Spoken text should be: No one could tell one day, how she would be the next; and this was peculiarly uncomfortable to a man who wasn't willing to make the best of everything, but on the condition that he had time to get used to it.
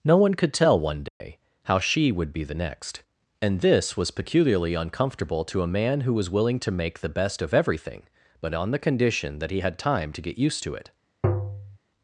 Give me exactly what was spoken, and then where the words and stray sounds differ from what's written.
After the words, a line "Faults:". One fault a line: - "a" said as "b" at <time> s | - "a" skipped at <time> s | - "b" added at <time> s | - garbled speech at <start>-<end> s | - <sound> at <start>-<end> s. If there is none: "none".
No one could tell one day, how she would be the next; and this was peculiarly uncomfortable to a man who was willing to make the best of everything, but on the condition that he had time to get used to it.
Faults:
- dropout at 1.1-1.2 s
- "wasn't" said as "was" at 6.1 s
- tap at 11.2-11.8 s